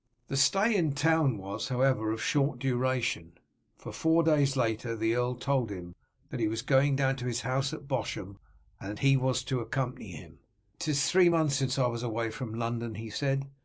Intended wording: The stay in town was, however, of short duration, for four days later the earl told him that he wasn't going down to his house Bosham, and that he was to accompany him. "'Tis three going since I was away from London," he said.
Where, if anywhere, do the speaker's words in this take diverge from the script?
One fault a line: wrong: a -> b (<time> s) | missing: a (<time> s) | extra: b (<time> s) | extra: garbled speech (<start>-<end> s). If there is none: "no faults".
wrong: wasn't -> was (6.5 s)
extra: at (7.7 s)
wrong: going -> months (11.3 s)